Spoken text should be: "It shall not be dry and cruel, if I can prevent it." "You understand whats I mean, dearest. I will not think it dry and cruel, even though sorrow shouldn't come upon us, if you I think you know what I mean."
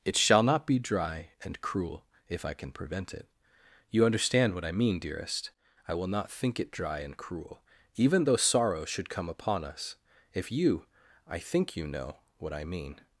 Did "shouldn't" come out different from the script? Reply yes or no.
yes